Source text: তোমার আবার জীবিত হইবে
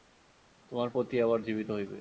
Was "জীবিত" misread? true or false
false